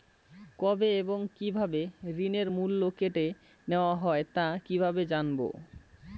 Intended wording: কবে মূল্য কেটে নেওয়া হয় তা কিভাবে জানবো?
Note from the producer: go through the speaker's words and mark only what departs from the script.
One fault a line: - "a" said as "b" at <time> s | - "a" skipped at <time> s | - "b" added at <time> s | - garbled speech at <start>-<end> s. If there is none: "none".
- "এবং কিভাবে ঋণের" added at 1.0 s